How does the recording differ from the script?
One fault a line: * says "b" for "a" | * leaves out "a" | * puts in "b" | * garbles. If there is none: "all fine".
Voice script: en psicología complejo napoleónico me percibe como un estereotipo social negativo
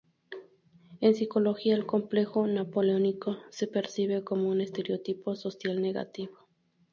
* puts in "el"
* says "se" for "me"